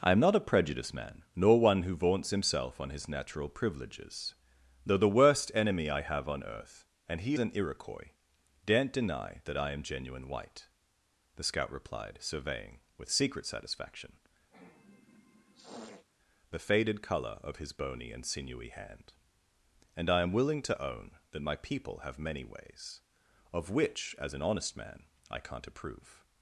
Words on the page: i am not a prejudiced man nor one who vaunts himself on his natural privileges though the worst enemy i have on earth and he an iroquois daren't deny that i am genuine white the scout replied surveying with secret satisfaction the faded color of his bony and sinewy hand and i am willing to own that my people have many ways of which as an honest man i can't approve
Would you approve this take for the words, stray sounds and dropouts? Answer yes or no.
no